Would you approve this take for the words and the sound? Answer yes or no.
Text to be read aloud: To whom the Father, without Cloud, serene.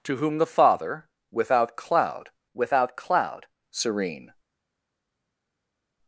no